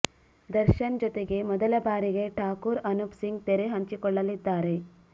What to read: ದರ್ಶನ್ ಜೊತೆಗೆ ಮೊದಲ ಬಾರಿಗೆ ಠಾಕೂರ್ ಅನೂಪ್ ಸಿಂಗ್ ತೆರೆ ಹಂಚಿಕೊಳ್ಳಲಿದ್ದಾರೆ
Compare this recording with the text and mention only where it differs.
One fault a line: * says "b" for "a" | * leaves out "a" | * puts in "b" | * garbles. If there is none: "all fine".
all fine